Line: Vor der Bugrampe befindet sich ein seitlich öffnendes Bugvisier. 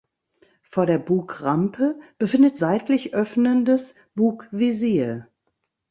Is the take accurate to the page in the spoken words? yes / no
no